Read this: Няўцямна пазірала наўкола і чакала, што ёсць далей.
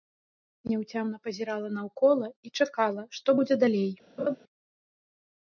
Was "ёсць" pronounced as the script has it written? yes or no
no